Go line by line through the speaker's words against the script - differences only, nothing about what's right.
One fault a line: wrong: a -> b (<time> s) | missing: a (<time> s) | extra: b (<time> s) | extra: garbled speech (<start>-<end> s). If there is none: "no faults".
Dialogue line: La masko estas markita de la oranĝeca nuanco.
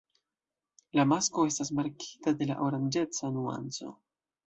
no faults